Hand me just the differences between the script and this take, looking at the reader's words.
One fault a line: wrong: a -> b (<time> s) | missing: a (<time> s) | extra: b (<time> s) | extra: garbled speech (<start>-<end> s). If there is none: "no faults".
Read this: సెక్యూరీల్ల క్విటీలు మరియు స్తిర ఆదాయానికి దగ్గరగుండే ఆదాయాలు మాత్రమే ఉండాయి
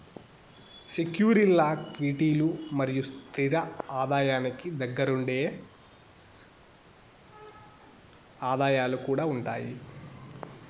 wrong: మాత్రమే -> కూడా (9.1 s)